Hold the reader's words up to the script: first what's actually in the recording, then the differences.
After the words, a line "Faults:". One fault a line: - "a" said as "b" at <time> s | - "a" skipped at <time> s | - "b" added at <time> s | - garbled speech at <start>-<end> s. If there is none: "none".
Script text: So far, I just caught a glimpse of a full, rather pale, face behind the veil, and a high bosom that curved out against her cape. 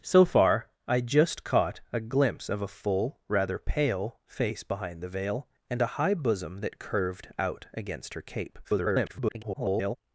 So far, I just caught a glimpse of a full, rather pale, face behind the veil, and a high bosom that curved out against her cape. [garbled]
Faults:
- garbled speech at 8.6-10.0 s